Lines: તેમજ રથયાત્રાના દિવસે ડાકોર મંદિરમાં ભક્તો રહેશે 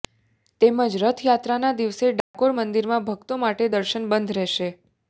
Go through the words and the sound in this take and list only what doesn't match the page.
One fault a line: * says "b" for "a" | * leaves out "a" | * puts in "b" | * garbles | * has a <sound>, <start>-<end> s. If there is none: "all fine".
* has a dropout, 2.2-2.3 s
* puts in "માટે દર્શન બંધ"